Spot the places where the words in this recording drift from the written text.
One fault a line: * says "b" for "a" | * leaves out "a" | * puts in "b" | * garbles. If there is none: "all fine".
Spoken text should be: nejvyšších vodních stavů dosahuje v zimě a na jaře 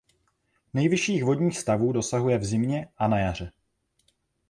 all fine